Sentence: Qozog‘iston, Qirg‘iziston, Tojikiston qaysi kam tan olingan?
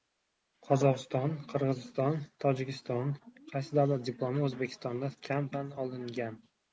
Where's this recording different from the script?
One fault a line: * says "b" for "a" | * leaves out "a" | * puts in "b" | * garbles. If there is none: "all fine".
* puts in "davlat diplomi O‘zbekistonda"